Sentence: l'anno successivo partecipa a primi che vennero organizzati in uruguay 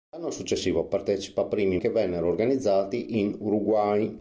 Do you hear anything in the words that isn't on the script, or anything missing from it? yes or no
no